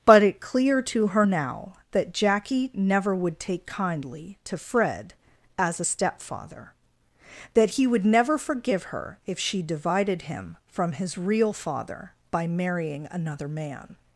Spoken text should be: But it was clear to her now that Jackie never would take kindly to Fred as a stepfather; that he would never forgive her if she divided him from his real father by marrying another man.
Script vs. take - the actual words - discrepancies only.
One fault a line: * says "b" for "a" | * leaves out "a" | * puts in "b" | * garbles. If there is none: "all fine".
* leaves out "was"